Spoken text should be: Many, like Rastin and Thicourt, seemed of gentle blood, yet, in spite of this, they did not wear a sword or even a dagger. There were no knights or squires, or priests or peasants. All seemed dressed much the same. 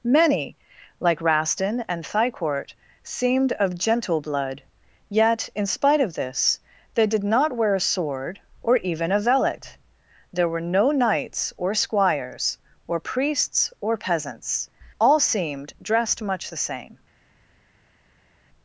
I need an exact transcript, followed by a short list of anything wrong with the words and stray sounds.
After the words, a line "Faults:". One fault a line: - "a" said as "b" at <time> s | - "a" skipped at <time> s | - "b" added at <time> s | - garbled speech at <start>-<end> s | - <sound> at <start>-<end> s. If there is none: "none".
Many, like Rastin and Thicourt, seemed of gentle blood, yet, in spite of this, they did not wear a sword or even a velet. There were no knights or squires, or priests or peasants. All seemed dressed much the same.
Faults:
- "dagger" said as "velet" at 9.2 s